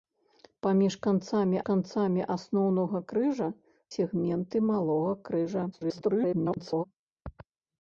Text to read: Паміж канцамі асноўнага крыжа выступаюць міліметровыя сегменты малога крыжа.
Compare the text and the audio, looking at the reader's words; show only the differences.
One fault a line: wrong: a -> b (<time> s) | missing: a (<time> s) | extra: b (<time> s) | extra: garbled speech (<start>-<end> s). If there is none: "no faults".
extra: канцамі (1.7 s)
missing: выступаюць міліметровыя (3.5 s)
extra: garbled speech (5.7-6.8 s)